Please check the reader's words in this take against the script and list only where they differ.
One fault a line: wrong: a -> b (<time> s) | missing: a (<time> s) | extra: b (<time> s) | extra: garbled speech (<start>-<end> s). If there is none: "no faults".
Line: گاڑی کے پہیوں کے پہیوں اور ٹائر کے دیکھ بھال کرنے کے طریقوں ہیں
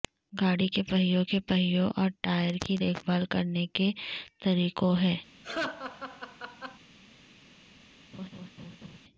wrong: کے -> کی (2.6 s)